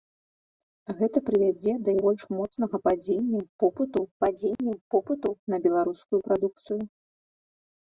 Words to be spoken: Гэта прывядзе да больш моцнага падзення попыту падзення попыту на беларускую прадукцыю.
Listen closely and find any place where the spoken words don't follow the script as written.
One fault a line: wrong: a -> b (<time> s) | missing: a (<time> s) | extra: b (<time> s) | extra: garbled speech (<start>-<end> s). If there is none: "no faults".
no faults